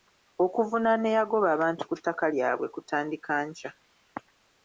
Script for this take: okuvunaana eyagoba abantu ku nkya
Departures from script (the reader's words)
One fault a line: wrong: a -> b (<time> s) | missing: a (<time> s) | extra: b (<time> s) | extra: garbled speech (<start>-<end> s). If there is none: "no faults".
extra: ttaka lyabwe kutandika (2.0 s)